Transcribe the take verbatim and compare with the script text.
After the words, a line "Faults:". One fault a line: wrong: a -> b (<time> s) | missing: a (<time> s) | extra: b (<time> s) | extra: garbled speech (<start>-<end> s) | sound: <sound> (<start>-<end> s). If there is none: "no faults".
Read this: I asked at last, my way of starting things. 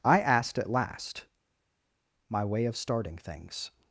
I asked at last, my way of starting things.
Faults:
no faults